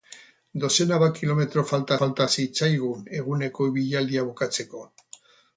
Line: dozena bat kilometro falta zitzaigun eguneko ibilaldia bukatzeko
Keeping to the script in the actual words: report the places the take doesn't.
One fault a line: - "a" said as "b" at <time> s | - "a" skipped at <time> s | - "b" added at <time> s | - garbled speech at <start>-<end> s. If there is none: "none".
- "falta" added at 2.0 s